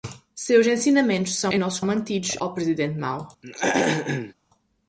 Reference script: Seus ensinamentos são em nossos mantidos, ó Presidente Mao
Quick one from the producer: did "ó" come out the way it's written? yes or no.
yes